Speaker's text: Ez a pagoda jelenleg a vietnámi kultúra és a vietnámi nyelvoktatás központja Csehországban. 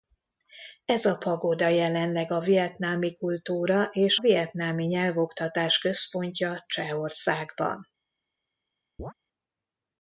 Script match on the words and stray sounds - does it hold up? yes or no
no